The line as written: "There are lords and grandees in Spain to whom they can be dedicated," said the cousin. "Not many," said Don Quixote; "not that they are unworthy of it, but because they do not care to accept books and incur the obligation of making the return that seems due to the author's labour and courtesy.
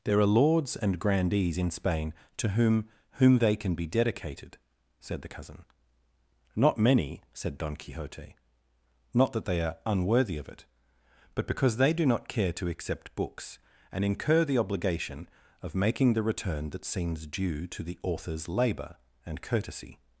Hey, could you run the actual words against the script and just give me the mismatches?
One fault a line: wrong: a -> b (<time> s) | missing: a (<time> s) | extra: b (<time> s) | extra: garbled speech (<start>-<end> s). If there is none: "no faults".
extra: whom (3.1 s)